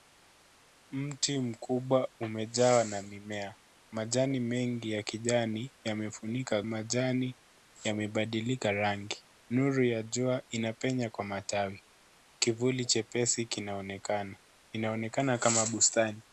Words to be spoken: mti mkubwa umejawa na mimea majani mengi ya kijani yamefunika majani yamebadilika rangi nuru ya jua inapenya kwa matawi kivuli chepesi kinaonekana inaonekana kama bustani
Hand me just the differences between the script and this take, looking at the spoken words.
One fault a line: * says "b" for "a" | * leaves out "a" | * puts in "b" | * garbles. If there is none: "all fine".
all fine